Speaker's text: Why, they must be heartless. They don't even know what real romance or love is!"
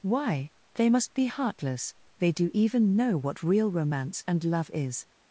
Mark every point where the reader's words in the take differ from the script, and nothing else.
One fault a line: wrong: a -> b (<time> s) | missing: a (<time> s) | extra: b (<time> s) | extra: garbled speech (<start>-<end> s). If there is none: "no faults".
wrong: don't -> do (2.3 s)
wrong: or -> and (4.3 s)